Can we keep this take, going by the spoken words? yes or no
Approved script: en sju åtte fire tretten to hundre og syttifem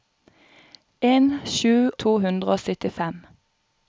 no